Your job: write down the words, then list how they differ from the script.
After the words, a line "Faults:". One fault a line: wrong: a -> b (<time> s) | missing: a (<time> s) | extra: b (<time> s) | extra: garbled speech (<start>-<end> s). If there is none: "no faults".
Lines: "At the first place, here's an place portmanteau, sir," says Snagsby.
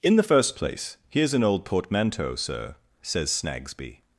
"In the first place, here's an old portmanteau, sir," says Snagsby.
Faults:
wrong: At -> In (0.0 s)
wrong: place -> old (1.4 s)